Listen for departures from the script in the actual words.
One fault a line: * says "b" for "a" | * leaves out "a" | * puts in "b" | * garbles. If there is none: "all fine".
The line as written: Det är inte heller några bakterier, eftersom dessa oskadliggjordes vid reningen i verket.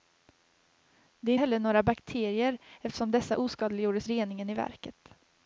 * leaves out "inte"
* leaves out "vid"